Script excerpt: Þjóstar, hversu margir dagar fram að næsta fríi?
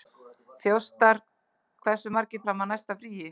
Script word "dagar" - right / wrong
wrong